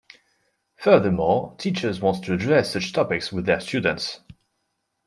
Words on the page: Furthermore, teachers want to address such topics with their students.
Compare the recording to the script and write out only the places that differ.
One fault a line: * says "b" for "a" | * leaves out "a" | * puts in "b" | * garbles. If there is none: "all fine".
all fine